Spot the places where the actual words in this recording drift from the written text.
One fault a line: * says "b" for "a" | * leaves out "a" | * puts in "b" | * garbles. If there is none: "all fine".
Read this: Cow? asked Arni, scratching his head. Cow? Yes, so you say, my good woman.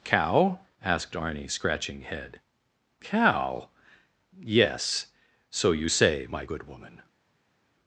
* leaves out "his"